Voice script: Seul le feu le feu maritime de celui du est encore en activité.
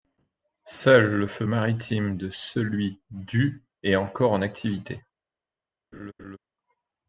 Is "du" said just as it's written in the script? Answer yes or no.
yes